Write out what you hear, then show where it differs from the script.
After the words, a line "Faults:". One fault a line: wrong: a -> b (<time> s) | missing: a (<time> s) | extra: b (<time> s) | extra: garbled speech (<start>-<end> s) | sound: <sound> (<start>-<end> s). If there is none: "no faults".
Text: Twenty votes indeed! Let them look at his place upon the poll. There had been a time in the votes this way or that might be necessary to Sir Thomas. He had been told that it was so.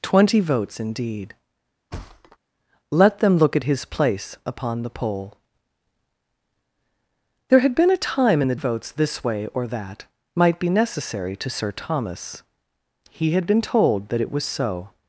Twenty votes indeed! Let them look at his place upon the poll. There had been a time in the votes this way or that might be necessary to Sir Thomas. He had been told that it was so.
Faults:
sound: thud (1.9-2.4 s)